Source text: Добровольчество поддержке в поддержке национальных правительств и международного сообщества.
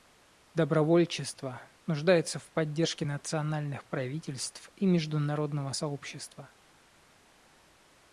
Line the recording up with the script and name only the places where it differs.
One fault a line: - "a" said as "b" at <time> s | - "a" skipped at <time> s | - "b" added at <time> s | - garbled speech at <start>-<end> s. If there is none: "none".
- "поддержке" said as "нуждается" at 1.9 s